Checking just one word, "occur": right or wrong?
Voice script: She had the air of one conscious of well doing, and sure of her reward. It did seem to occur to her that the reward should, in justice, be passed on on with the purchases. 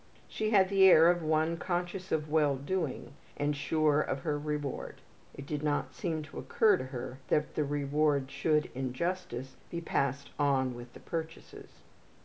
right